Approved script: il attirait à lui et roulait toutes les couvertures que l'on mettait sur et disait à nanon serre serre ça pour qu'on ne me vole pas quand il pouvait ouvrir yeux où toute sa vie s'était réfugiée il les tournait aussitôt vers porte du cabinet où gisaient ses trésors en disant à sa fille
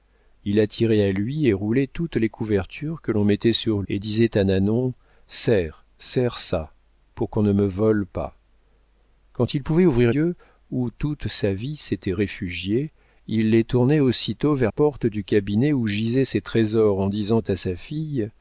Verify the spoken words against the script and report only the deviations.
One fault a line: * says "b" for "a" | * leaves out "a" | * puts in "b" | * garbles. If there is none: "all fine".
all fine